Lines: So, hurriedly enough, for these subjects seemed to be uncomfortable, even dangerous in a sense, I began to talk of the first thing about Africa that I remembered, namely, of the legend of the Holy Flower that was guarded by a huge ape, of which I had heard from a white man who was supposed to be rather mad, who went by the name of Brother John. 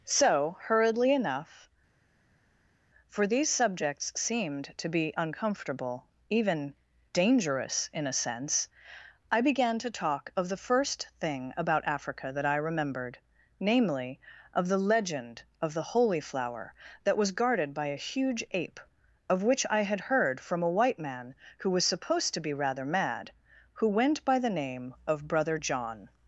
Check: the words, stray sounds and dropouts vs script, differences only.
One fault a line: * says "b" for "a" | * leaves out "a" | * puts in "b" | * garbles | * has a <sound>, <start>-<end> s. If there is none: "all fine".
all fine